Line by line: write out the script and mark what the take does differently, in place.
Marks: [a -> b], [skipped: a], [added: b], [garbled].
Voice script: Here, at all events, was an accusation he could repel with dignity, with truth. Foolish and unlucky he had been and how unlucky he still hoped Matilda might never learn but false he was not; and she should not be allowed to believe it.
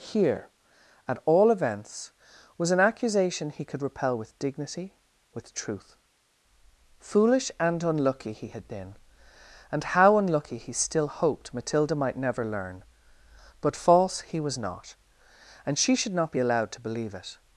Here, at all events, was an accusation he could repel with dignity, with truth. Foolish and unlucky he had been and how unlucky he still hoped Matilda might never learn but false he was not; and she should not be allowed to believe it.